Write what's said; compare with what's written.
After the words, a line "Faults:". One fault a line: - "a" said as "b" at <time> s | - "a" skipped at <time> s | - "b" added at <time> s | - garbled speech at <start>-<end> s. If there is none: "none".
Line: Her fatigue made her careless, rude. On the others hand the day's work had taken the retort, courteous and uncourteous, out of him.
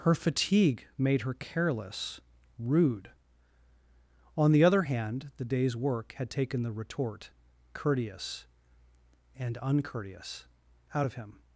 Her fatigue made her careless, rude. On the other hand the day's work had taken the retort, courteous and uncourteous, out of him.
Faults:
- "others" said as "other" at 4.6 s